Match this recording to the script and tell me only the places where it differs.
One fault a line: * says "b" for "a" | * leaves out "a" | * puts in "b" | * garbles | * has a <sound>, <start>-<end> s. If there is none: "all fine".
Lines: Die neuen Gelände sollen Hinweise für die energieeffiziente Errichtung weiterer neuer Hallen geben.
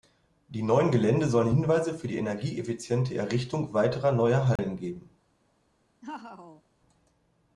* has a dropout, 4.6-4.6 s
* has a laugh, 6.0-6.6 s